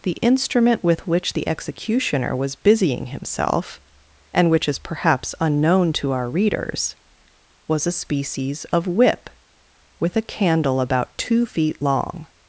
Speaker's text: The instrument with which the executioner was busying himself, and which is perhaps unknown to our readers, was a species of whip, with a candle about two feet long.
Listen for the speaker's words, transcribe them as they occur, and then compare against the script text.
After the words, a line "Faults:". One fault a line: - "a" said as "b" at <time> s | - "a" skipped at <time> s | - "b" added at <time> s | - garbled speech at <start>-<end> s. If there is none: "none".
The instrument with which the executioner was busying himself, and which is perhaps unknown to our readers, was a species of whip, with a candle about two feet long.
Faults:
none